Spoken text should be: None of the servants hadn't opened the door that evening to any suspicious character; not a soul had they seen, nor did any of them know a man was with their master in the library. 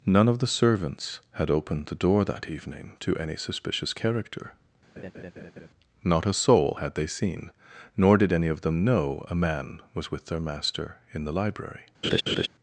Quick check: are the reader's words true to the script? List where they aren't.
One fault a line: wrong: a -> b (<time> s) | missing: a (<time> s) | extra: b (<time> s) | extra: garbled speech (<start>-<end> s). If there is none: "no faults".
wrong: hadn't -> had (1.3 s)